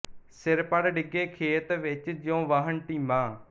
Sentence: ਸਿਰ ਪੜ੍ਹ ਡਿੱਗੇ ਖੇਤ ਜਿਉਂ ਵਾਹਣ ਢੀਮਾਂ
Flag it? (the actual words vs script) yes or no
yes